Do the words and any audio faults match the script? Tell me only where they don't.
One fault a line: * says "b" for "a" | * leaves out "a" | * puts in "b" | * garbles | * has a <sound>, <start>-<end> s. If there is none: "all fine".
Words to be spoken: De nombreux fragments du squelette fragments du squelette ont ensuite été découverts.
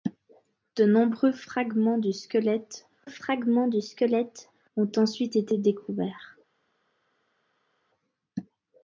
all fine